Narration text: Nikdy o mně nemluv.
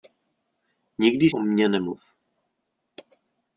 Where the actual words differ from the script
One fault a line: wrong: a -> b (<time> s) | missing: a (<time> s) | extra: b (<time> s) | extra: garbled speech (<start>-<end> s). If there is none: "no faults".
no faults